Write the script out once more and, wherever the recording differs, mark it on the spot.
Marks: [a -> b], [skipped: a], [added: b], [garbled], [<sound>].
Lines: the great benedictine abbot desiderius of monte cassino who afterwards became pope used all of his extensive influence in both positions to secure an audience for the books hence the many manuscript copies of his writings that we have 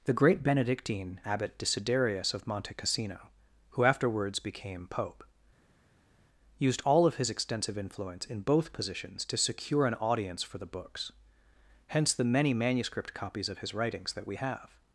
the great benedictine abbot desiderius of monte cassino who afterwards became pope used all of his extensive influence in both positions to secure an audience for the books hence the many manuscript copies of his writings that we have